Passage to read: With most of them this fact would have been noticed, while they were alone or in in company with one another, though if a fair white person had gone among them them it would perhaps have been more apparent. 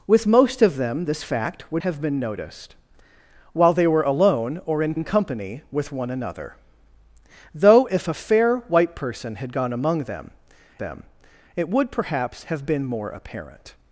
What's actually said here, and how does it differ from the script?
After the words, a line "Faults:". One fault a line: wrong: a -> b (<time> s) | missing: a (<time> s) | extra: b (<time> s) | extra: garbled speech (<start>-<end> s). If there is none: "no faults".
With most of them this fact would have been noticed, while they were alone or in in company with one another, though if a fair white person had gone among them them it would perhaps have been more apparent.
Faults:
no faults